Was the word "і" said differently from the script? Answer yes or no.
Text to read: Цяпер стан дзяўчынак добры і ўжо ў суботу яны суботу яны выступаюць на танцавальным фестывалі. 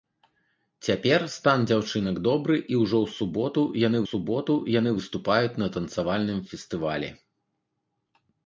no